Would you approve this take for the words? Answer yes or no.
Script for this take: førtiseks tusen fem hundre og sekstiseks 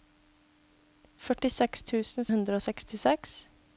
no